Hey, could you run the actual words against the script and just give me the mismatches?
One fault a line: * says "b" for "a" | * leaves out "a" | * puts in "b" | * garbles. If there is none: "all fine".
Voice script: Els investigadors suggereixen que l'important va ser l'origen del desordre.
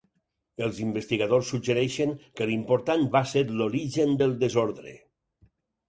all fine